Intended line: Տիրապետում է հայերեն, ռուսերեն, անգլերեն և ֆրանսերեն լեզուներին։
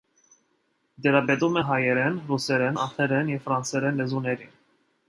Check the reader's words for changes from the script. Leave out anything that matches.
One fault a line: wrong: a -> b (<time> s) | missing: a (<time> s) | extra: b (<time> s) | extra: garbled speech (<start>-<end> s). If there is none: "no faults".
no faults